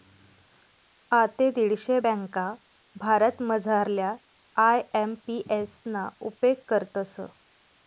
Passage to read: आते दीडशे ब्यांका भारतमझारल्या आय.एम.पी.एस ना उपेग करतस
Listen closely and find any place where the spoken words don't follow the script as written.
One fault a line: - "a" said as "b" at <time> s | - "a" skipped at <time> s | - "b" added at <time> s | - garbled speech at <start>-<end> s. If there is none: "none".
none